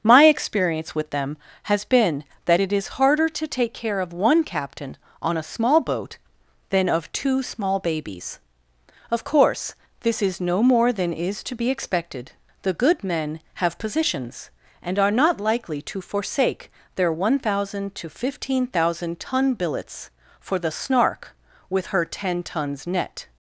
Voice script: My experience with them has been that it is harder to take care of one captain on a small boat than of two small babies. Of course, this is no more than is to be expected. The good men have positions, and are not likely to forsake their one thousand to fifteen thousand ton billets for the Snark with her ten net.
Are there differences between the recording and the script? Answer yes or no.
yes